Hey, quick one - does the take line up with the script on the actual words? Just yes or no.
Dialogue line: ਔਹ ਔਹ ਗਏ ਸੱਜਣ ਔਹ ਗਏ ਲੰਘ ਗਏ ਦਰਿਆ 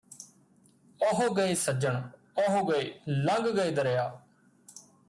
no